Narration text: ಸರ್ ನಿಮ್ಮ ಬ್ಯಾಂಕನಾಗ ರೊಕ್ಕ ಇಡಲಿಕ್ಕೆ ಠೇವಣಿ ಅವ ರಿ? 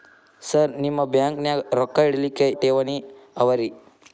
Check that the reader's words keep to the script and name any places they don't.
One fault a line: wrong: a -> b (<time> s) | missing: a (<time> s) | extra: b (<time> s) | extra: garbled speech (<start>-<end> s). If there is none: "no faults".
no faults